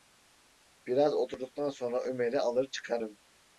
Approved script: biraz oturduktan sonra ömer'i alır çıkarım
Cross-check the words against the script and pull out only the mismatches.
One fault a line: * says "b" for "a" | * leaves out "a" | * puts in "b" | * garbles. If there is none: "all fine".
all fine